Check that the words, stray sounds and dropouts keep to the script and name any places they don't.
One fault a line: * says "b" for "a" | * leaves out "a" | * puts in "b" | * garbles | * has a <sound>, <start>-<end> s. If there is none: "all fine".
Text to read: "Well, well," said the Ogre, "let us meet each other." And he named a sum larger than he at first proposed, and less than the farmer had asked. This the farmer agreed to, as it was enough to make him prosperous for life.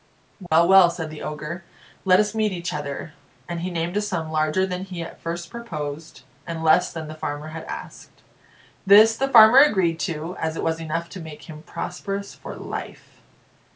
* has a dropout, 0.5-0.5 s